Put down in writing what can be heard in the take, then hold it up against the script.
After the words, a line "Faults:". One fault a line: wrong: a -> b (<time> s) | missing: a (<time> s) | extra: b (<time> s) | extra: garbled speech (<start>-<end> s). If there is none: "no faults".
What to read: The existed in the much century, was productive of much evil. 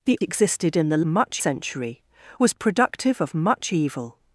The existed in the much century, was productive of much evil.
Faults:
no faults